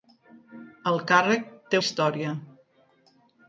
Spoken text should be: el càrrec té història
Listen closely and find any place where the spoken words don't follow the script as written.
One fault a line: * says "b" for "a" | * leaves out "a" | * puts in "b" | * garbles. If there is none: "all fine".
all fine